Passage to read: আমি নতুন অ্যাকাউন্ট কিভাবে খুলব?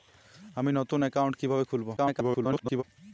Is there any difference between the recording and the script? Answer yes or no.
yes